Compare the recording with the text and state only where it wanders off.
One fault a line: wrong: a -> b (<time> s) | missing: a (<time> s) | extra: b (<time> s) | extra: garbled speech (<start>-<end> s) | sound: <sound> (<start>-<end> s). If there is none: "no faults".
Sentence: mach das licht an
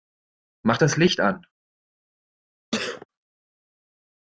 sound: sneeze (2.7-3.1 s)